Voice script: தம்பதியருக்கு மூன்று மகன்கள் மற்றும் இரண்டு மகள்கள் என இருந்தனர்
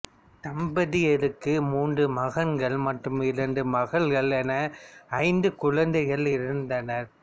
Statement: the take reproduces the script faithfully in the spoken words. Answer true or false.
false